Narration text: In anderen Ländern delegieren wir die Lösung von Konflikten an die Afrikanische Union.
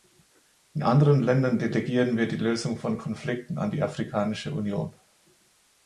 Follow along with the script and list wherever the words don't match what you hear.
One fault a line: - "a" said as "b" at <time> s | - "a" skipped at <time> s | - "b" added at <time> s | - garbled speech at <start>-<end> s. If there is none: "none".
none